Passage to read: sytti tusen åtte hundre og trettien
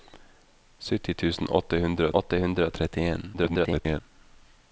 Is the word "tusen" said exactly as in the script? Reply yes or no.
yes